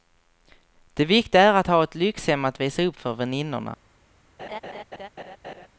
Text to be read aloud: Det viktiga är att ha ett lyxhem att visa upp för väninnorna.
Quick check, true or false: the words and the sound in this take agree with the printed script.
false